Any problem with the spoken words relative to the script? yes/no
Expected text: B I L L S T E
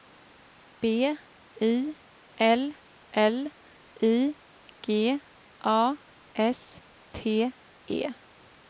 yes